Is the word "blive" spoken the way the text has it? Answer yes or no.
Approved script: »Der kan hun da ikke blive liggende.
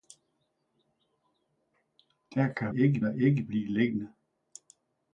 yes